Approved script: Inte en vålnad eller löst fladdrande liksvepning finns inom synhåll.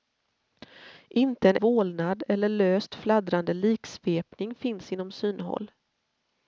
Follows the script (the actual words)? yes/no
yes